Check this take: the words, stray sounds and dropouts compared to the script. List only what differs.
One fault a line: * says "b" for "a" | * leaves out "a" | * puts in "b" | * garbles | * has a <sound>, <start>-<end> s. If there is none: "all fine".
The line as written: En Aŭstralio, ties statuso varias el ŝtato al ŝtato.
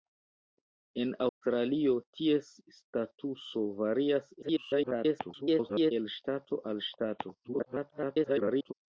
* has a dropout, 1.3-1.4 s
* garbles
* garbles